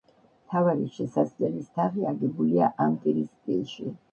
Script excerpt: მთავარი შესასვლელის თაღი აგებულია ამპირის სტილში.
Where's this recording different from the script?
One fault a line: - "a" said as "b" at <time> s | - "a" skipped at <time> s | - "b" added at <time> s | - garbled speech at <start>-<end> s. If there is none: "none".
none